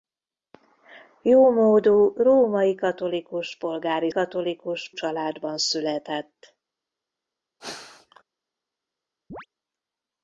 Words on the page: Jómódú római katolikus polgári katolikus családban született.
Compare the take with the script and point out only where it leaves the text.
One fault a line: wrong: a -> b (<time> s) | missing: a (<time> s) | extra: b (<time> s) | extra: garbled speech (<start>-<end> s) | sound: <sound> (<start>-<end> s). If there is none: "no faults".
sound: sneeze (7.6-8.2 s)
sound: chirp (9.3-9.5 s)